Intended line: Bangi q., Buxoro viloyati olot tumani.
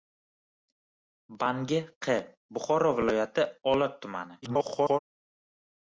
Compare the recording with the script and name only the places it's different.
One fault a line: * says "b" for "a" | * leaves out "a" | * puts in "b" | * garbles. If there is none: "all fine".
* garbles